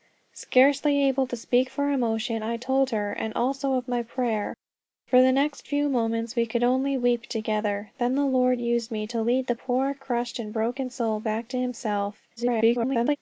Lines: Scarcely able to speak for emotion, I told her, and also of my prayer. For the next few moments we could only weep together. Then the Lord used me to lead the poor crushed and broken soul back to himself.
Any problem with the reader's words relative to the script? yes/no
yes